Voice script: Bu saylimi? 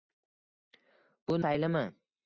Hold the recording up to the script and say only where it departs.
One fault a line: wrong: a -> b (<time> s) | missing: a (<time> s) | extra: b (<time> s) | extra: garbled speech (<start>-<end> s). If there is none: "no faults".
no faults